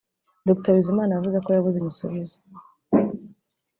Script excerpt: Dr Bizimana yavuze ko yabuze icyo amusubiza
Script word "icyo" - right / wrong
wrong